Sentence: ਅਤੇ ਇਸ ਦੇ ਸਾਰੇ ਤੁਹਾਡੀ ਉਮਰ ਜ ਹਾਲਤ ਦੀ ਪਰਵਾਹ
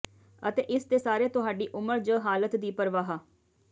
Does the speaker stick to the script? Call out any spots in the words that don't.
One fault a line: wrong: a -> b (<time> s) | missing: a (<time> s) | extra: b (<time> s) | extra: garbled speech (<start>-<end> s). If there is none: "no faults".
no faults